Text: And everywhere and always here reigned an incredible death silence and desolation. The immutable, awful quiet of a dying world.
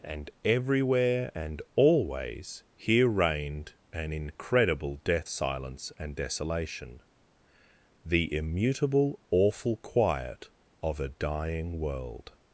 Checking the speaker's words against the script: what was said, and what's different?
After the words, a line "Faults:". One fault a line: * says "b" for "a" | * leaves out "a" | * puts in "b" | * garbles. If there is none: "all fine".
And everywhere and always here reigned an incredible death silence and desolation. The immutable, awful quiet of a dying world.
Faults:
all fine